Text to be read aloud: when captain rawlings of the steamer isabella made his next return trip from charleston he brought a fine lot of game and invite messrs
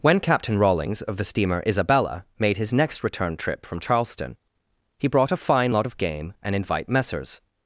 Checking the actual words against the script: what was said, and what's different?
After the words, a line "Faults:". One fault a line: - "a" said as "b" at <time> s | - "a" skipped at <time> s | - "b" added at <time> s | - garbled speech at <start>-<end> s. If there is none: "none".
when captain rawlings of the steamer isabella made his next return trip from charleston he brought a fine lot of game and invite messrs
Faults:
none